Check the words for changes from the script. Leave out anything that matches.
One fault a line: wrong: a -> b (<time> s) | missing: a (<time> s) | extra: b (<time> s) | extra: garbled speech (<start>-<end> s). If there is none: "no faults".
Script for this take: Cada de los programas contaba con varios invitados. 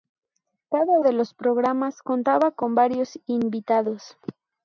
no faults